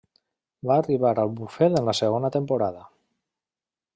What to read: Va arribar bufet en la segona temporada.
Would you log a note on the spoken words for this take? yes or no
yes